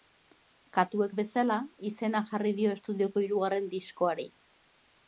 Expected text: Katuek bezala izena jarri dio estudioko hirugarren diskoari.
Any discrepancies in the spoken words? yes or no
no